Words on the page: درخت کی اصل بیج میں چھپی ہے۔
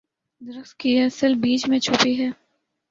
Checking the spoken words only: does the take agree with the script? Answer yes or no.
yes